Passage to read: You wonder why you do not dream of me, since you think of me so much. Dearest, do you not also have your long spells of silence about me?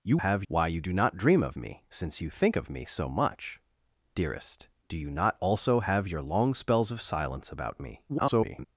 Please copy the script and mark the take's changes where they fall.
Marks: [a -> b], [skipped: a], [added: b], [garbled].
You [wonder -> have] why you do not dream of me, since you think of me so much. Dearest, do you not also have your long spells of silence about me? [garbled]